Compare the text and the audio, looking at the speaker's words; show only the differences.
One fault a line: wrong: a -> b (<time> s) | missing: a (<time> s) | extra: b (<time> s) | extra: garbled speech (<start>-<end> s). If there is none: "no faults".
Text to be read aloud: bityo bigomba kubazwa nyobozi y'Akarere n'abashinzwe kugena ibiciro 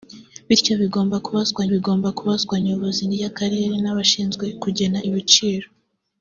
extra: bigomba kubazwa (1.7 s)